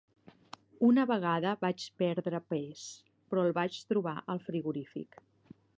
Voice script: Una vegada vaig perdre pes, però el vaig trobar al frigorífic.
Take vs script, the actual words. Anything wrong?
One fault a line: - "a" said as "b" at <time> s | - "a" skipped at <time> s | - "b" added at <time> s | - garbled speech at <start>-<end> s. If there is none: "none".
none